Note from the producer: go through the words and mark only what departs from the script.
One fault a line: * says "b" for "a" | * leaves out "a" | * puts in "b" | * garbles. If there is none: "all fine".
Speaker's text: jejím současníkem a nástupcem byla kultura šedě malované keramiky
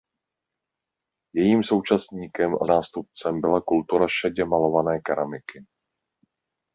all fine